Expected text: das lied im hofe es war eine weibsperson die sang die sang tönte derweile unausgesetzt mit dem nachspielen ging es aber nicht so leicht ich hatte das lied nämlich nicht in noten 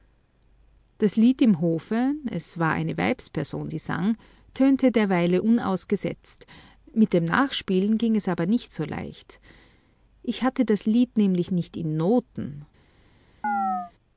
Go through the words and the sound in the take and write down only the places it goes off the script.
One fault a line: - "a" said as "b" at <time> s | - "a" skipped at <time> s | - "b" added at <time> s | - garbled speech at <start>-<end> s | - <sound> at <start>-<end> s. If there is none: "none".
- "die sang" skipped at 4.2 s
- chirp at 13.4-13.9 s